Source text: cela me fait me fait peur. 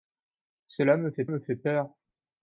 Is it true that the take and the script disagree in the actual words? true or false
false